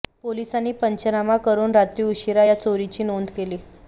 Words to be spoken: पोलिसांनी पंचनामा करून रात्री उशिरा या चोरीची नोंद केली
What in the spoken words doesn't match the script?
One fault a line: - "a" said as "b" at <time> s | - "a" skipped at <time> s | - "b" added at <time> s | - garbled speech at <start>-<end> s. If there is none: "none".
none